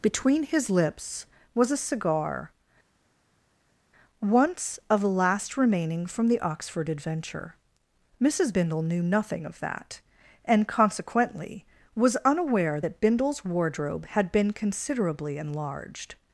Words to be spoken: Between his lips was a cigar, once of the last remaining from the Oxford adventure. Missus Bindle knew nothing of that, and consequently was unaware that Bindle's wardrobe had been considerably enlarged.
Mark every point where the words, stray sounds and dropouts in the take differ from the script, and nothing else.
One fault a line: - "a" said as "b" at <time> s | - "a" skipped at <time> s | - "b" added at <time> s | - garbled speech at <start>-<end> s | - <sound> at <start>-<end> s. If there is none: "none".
none